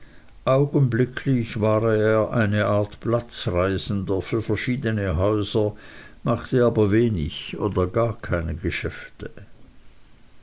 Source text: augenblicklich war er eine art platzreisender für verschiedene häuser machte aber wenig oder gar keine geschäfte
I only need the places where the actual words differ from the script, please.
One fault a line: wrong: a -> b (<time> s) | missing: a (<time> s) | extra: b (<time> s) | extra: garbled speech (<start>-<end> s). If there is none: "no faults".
no faults